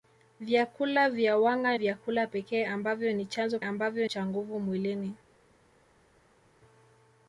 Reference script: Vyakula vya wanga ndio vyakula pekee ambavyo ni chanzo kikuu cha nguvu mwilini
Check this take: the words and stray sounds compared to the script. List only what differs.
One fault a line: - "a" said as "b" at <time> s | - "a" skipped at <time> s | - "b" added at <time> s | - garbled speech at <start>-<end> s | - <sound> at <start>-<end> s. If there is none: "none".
- "ndio" skipped at 1.8 s
- "kikuu" said as "ambavyo" at 3.6 s